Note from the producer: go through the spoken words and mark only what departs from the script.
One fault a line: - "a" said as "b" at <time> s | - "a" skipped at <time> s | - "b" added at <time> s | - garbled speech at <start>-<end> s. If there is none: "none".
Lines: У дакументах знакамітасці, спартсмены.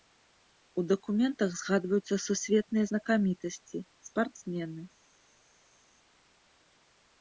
- "згадваюцца сусветныя" added at 1.6 s